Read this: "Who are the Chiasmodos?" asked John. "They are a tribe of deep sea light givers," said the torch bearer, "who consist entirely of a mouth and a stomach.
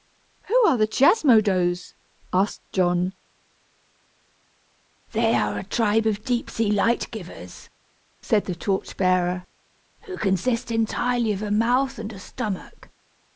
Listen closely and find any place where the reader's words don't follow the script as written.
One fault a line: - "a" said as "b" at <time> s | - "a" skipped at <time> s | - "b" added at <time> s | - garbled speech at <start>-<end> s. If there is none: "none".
none